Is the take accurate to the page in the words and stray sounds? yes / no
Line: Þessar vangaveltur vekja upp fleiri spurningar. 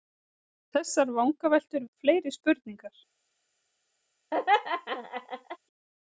no